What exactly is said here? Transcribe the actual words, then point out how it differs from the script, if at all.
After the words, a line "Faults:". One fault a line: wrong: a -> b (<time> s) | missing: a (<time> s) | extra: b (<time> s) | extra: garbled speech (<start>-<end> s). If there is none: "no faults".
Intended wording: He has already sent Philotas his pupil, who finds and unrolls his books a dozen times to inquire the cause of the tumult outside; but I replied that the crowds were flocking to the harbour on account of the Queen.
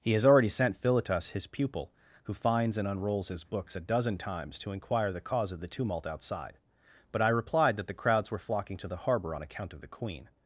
He has already sent Philotas his pupil, who finds and unrolls his books a dozen times to inquire the cause of the tumult outside; but I replied that the crowds were flocking to the harbour on account of the Queen.
Faults:
no faults